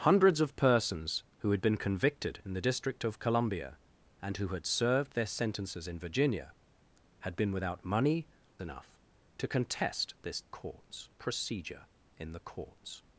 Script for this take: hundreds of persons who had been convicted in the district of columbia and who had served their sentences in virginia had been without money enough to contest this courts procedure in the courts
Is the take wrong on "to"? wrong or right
right